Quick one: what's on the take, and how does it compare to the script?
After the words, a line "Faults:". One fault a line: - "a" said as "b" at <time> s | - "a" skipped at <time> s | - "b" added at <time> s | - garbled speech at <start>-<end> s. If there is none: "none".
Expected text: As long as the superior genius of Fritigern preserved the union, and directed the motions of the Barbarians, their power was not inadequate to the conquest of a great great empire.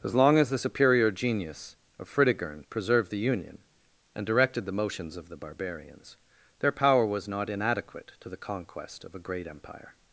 As long as the superior genius of Fritigern preserved the union, and directed the motions of the Barbarians, their power was not inadequate to the conquest of a great empire.
Faults:
- "great" skipped at 9.5 s